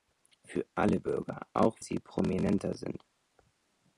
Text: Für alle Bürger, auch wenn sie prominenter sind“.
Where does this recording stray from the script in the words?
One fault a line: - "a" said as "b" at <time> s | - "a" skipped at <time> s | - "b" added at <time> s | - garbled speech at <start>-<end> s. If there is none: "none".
- "wenn" skipped at 1.8 s